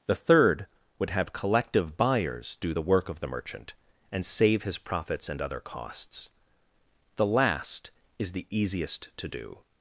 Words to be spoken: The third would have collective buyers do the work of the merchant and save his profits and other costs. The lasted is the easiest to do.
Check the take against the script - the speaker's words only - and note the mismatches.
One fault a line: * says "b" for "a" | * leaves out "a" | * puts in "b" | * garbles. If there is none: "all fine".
* says "last" for "lasted"